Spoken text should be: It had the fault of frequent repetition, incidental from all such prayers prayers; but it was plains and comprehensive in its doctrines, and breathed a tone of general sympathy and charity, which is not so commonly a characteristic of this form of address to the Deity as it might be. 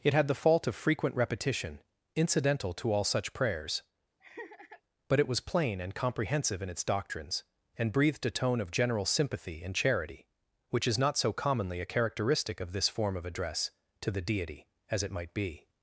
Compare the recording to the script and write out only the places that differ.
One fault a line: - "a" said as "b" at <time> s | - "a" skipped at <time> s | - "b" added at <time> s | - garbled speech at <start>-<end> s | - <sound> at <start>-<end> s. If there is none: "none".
- "from" said as "to" at 2.7 s
- "prayers" skipped at 3.8 s
- laugh at 4.2-4.8 s
- "plains" said as "plain" at 5.4 s